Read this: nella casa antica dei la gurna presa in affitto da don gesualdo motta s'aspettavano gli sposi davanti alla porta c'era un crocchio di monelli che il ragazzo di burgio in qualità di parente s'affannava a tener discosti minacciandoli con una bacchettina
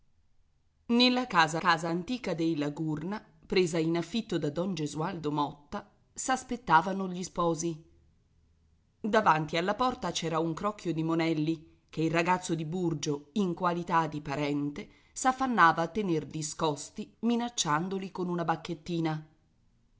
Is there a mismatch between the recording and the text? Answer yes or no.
yes